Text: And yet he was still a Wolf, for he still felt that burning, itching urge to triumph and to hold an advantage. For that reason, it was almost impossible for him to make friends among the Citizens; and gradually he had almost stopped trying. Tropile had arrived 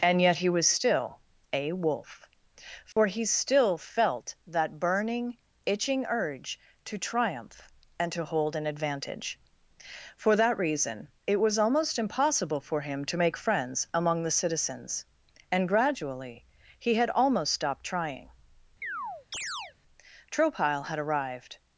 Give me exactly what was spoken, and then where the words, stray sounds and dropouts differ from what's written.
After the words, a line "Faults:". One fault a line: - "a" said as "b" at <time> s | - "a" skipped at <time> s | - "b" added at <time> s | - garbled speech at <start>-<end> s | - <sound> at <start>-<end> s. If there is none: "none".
And yet he was still a Wolf, for he still felt that burning, itching urge to triumph and to hold an advantage. For that reason, it was almost impossible for him to make friends among the Citizens; and gradually he had almost stopped trying. Tropile had arrived
Faults:
- dropout at 2.9-3.0 s
- chirp at 18.8-19.7 s